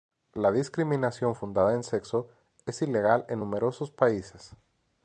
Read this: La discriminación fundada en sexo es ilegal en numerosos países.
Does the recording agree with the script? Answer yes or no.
yes